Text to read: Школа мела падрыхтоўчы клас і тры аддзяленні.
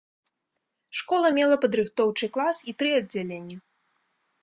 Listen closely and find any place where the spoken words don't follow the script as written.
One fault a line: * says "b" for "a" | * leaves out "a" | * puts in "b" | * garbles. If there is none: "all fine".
all fine